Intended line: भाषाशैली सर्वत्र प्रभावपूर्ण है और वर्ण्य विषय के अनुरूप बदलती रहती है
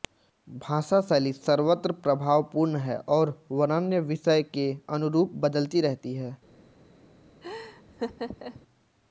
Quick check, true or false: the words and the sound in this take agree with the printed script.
false